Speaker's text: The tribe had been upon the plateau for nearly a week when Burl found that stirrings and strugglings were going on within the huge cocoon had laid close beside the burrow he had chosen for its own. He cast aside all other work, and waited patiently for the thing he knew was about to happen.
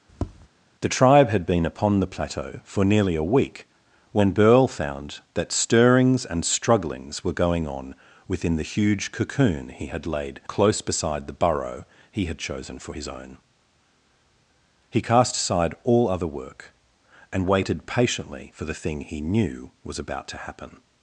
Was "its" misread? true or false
true